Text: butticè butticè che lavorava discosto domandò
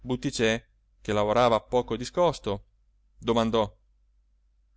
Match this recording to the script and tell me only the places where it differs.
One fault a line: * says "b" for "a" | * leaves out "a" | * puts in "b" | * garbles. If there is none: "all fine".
* leaves out "butticè"
* puts in "poco"